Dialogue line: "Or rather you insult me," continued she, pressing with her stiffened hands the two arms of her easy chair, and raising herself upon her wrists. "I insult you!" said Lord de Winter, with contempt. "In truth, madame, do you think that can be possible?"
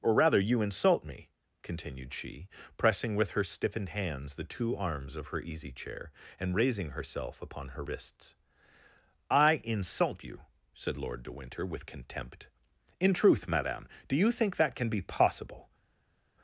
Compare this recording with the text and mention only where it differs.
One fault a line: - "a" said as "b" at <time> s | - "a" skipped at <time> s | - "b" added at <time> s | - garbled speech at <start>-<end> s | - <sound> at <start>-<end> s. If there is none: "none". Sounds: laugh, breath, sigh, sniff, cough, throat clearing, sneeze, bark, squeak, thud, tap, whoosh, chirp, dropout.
none